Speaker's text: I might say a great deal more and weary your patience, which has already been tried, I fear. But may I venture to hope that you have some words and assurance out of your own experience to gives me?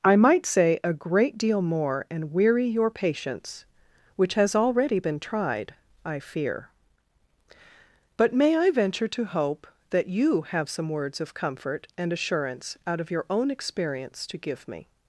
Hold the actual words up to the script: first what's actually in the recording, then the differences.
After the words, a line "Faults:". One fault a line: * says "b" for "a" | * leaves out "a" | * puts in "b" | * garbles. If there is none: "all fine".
I might say a great deal more and weary your patience, which has already been tried, I fear. But may I venture to hope that you have some words of comfort and assurance out of your own experience to give me?
Faults:
* puts in "of comfort"
* says "give" for "gives"